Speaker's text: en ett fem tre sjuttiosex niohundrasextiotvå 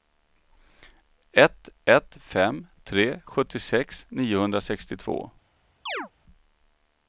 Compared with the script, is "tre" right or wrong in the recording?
right